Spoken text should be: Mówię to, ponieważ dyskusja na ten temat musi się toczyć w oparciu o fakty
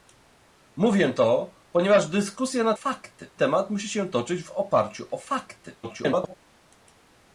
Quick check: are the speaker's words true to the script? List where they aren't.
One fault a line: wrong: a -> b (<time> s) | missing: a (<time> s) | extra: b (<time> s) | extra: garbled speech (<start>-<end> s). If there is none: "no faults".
wrong: ten -> fakty (2.7 s)
extra: garbled speech (5.8-6.4 s)